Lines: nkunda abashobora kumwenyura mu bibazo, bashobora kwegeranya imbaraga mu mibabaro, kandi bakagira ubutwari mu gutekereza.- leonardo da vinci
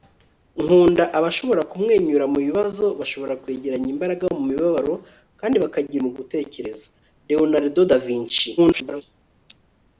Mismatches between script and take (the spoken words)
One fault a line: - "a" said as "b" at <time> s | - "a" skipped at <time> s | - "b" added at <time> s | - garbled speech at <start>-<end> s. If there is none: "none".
- "ubutwari" skipped at 6.0 s
- garbled speech at 8.6-9.0 s